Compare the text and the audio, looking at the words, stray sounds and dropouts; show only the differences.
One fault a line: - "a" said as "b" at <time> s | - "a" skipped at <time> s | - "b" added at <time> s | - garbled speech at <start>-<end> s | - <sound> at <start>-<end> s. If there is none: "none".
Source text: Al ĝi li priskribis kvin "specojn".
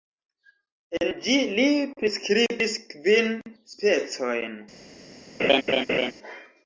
- "Al" said as "En" at 1.0 s
- laugh at 5.4-6.1 s